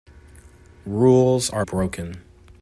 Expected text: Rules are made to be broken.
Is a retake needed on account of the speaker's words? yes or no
yes